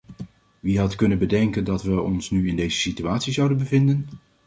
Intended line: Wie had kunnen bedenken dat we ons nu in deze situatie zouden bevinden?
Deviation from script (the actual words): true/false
false